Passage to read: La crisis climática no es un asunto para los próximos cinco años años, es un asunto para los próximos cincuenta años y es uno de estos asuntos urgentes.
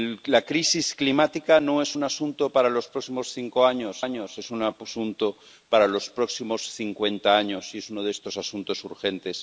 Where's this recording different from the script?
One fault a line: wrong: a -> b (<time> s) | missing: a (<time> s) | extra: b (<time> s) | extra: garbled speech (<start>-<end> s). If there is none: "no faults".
no faults